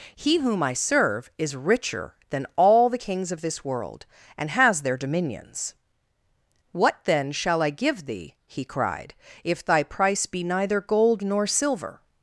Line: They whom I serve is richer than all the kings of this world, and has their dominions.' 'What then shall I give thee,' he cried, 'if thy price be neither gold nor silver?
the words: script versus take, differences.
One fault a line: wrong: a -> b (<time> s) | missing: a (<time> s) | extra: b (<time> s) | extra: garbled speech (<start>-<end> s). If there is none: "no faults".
wrong: They -> He (0.1 s)